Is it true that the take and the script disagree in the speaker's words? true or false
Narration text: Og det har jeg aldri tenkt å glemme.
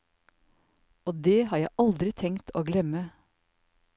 false